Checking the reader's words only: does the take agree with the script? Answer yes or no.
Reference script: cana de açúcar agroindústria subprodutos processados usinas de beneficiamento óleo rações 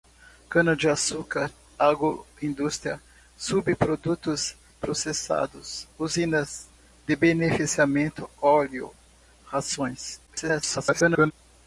no